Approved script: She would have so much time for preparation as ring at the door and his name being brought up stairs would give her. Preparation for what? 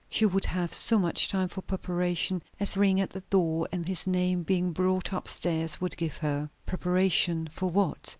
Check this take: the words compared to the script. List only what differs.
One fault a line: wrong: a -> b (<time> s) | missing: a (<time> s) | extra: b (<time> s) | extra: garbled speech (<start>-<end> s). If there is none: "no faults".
no faults